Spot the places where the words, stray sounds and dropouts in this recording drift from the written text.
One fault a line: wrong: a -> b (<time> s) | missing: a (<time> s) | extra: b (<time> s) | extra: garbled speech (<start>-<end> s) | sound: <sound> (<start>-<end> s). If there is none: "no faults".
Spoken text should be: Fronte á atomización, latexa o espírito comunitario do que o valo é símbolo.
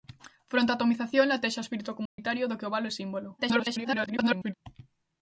sound: dropout (2.1-2.2 s)
extra: garbled speech (3.4-4.5 s)